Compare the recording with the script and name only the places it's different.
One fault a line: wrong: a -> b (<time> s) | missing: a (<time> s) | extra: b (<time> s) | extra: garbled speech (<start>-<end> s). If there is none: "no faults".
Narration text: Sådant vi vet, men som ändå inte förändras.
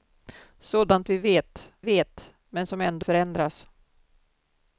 extra: vet (1.8 s)
missing: inte (3.1 s)